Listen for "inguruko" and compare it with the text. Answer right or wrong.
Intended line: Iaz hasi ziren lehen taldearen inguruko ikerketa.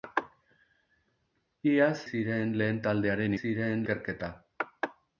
wrong